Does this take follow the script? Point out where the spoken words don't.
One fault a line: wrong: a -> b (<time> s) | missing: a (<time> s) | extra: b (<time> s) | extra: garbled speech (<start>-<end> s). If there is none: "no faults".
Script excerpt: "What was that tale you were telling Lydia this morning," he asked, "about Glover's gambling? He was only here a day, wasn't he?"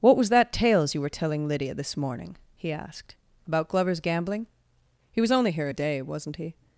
wrong: tale -> tales (0.5 s)